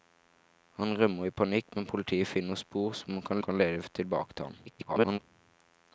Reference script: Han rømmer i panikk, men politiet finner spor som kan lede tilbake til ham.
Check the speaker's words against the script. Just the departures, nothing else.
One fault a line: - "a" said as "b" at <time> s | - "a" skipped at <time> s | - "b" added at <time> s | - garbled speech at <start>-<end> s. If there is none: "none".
- "kan" added at 3.5 s
- garbled speech at 4.7-5.2 s